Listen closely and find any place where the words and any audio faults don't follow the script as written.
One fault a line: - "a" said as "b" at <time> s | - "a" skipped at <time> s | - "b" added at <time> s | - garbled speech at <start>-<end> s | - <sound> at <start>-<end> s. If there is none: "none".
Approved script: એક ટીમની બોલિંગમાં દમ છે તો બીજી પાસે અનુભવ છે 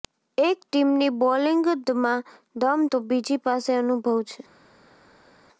- "છે" skipped at 2.8 s